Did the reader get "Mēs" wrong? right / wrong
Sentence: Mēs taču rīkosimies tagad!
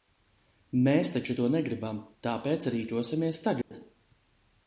right